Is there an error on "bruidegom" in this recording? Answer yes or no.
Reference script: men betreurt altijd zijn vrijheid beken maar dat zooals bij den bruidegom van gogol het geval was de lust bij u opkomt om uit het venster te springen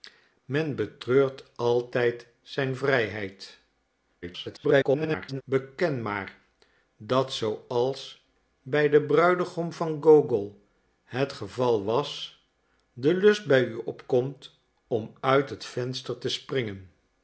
no